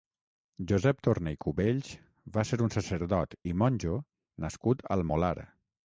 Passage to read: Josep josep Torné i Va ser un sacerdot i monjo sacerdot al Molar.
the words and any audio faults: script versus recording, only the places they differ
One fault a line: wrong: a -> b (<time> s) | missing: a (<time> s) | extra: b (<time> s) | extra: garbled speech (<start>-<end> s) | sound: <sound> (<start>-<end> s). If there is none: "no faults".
missing: josep (1.0 s)
extra: Cubells (1.4 s)
wrong: sacerdot -> nascut (4.5 s)